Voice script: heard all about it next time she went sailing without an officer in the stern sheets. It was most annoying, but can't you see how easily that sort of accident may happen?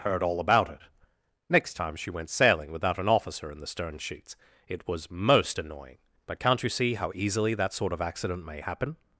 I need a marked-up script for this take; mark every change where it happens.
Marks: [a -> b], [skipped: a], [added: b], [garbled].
heard all about it next time she went sailing without an officer in the stern sheets. It was most annoying, but can't you see how easily that sort of accident may happen?